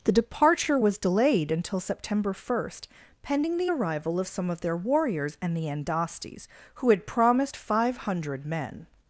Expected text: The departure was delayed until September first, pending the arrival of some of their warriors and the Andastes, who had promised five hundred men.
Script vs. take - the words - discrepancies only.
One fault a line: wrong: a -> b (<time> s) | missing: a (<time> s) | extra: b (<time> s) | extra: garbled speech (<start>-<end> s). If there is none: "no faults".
no faults